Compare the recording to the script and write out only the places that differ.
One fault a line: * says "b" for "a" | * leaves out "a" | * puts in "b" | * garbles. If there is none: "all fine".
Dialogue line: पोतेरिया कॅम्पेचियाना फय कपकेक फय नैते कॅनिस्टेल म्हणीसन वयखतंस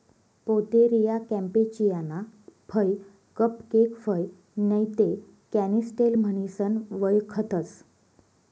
all fine